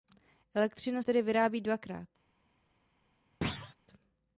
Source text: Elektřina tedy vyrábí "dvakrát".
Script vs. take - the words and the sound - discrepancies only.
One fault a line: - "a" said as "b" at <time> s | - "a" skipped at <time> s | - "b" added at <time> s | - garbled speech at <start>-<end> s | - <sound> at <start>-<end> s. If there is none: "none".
- thud at 3.4-3.8 s